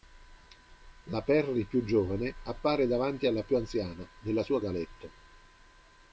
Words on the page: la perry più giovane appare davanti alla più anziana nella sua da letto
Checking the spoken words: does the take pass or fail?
pass